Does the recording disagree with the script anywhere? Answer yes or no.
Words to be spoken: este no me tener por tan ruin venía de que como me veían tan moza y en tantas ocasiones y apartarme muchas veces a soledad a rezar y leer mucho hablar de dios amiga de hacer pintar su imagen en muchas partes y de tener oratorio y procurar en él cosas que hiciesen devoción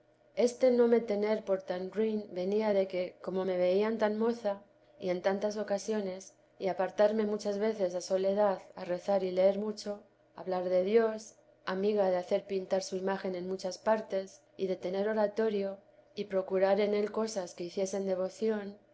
no